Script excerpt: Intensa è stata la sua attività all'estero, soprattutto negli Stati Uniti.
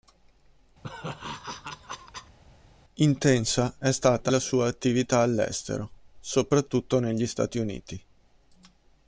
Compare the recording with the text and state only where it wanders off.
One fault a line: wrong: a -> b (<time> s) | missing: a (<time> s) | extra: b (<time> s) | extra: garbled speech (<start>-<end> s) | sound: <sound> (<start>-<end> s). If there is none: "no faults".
sound: laugh (0.8-2.4 s)